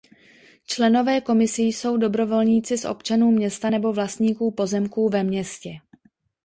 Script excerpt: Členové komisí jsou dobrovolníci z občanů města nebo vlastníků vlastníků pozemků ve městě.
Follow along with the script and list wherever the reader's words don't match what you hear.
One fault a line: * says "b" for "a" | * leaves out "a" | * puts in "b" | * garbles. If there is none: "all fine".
* leaves out "vlastníků"